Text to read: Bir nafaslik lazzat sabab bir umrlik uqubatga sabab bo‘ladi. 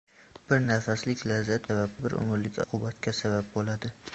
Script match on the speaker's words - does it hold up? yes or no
yes